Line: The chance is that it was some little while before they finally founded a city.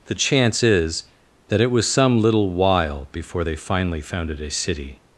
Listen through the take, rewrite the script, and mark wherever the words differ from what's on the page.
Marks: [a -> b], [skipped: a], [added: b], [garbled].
The chance is that it was some little while before they finally founded a city.